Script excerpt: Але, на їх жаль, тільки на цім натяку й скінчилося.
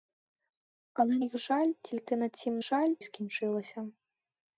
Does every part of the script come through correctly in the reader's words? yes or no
no